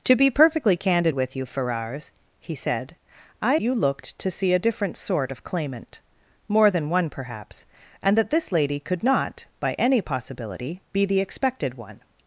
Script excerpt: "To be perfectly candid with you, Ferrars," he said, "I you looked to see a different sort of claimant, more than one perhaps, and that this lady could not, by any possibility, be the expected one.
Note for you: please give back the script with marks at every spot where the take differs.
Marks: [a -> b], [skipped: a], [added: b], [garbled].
"To be perfectly candid with you, Ferrars," he said, "I you looked to see a different sort of claimant, more than one perhaps, and that this lady could not, by any possibility, be the expected one.